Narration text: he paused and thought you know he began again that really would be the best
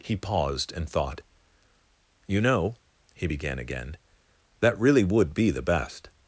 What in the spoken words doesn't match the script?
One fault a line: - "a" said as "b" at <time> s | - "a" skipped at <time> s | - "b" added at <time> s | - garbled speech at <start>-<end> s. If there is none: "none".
none